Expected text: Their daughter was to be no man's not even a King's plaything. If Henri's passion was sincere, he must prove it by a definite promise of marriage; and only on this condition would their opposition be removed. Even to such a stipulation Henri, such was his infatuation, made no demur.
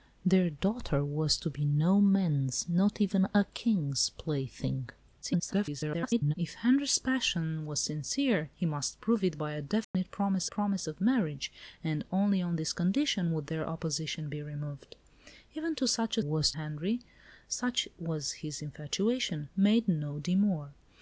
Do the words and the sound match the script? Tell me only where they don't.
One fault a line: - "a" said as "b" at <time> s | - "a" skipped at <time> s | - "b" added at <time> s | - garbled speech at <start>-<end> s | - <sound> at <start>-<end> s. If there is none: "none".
- garbled speech at 5.2-6.3 s
- dropout at 9.8-9.9 s
- "promise" added at 10.5 s
- "stipulation" said as "was" at 16.2 s